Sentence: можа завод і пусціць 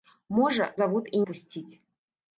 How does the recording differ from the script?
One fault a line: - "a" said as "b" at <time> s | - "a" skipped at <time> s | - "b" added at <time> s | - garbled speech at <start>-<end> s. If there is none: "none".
none